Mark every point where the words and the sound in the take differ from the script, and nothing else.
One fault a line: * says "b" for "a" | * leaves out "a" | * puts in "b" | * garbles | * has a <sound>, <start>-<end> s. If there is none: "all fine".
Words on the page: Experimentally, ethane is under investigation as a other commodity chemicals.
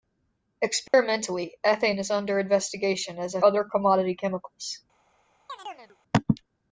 * has a dropout, 0.9-0.9 s
* has a chirp, 5.5-6.0 s